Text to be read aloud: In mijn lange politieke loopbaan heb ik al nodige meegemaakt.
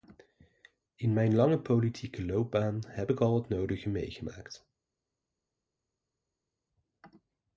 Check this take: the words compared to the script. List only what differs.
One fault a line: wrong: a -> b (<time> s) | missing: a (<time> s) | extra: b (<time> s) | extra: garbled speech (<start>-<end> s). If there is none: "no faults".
extra: het (3.3 s)